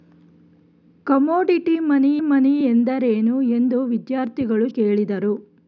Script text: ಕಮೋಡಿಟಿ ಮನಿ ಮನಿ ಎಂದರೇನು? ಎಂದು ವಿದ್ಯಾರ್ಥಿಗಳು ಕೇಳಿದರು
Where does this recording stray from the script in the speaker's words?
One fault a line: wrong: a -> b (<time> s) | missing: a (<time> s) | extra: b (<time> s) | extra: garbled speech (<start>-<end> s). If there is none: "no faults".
no faults